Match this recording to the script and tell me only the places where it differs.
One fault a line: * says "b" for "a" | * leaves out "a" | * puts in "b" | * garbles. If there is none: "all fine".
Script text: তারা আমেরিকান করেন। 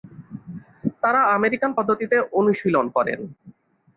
* puts in "পদ্ধতিতে অনুশীলন"